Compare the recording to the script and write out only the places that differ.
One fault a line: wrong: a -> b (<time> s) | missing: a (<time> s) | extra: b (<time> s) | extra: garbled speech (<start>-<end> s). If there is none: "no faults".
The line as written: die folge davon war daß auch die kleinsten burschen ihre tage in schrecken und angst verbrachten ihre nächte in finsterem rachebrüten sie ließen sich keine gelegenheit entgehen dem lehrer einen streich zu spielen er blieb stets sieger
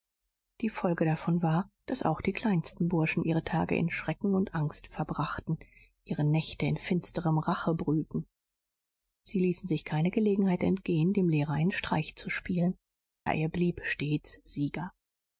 no faults